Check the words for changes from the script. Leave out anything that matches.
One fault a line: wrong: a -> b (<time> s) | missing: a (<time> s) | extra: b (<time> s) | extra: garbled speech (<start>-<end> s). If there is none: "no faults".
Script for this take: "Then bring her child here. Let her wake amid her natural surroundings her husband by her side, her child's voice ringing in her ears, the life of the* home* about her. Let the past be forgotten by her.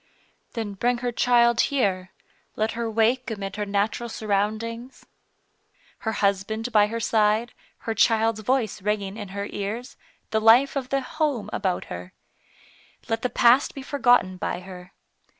no faults